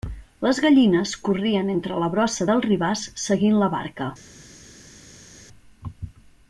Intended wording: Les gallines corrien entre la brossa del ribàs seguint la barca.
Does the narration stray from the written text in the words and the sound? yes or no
no